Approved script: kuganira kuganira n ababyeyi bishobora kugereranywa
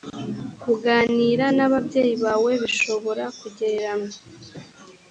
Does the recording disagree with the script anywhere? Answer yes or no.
yes